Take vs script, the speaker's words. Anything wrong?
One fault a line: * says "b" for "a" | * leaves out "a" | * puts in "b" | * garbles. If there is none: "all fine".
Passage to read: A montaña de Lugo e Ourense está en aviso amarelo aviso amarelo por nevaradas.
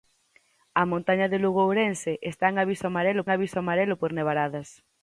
all fine